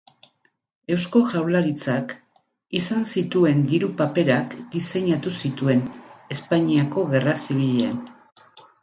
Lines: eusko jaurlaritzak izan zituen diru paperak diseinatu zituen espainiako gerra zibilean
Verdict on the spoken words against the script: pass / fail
pass